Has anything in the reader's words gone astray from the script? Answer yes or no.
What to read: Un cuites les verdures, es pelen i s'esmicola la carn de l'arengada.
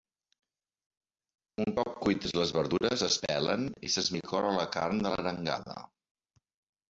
yes